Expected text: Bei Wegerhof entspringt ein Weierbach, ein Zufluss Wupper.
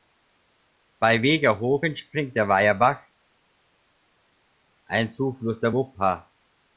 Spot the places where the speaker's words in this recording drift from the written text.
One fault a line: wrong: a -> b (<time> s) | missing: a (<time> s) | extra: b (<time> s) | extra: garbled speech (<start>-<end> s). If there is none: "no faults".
wrong: ein -> der (2.4 s)
extra: der (5.6 s)